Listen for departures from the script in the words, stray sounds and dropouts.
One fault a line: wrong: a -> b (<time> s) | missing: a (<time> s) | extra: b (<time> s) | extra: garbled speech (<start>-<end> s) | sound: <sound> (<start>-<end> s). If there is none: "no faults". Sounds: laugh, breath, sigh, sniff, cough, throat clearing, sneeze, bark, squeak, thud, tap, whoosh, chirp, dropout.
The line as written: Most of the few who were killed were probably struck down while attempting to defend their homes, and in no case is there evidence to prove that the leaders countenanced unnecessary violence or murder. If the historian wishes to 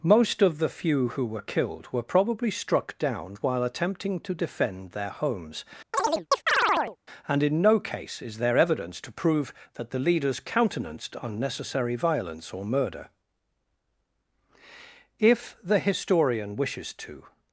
sound: chirp (5.9-7.0 s)